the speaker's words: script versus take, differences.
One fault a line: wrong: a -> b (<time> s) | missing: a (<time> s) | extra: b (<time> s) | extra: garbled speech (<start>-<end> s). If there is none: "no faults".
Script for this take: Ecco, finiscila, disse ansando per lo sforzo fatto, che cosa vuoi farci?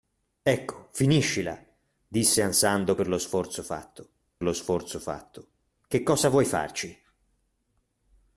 extra: lo sforzo fatto (4.4 s)